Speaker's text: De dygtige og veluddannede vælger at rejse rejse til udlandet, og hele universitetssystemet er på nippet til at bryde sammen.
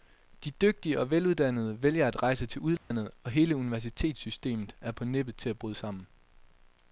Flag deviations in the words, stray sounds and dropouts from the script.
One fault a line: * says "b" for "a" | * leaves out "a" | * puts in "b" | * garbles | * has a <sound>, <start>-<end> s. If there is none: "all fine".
* leaves out "rejse"
* has a dropout, 2.8-2.9 s